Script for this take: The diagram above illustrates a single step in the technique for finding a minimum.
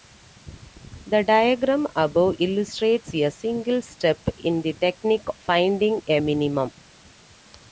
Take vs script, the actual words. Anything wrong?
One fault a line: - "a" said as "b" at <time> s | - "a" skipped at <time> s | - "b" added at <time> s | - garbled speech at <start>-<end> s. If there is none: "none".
- "for" skipped at 5.3 s